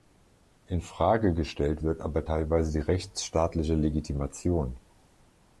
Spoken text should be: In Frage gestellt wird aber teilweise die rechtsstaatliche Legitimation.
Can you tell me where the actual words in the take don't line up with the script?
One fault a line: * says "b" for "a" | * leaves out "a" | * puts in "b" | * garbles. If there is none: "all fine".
all fine